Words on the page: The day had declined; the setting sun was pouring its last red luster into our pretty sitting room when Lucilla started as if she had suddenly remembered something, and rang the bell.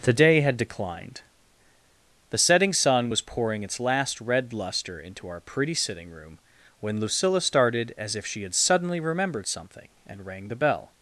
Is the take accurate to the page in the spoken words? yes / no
yes